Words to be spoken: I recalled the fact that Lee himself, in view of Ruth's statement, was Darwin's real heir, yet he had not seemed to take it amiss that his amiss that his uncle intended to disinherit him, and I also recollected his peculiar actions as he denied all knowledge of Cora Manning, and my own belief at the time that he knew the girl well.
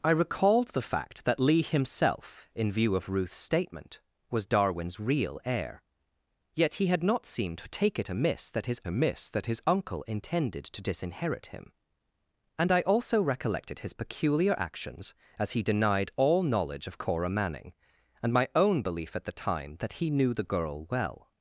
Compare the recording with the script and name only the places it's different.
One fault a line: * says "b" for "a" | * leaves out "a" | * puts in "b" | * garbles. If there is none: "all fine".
all fine